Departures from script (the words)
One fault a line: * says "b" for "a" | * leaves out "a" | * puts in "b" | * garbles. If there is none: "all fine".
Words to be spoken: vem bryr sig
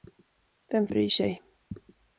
all fine